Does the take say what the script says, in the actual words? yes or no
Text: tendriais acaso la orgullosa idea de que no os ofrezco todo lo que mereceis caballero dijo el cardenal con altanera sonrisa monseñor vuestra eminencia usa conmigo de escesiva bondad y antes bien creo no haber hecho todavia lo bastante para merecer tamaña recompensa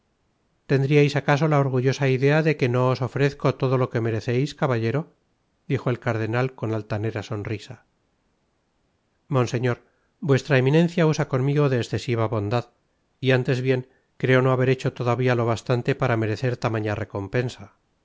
yes